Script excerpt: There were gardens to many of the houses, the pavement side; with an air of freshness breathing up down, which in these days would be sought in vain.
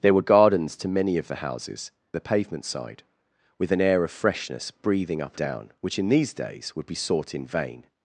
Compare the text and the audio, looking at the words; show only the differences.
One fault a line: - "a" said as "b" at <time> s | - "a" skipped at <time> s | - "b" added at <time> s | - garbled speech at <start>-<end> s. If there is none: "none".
none